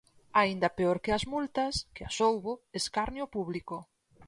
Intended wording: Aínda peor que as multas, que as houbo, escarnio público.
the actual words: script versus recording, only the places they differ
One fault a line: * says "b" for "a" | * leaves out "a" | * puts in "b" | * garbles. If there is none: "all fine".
all fine